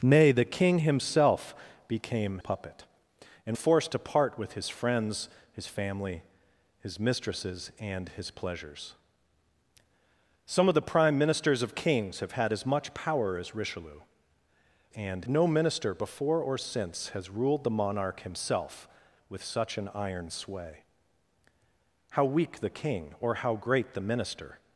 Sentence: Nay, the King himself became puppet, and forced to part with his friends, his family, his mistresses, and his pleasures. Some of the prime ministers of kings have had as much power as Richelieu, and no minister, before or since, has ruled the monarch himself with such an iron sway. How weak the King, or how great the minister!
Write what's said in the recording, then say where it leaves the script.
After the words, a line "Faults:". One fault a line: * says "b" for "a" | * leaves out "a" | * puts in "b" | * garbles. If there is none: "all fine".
Nay, the King himself became puppet, and forced to part with his friends, his family, his mistresses, and his pleasures. Some of the prime ministers of kings have had as much power as Richelieu, and no minister, before or since, has ruled the monarch himself with such an iron sway. How weak the King, or how great the minister!
Faults:
all fine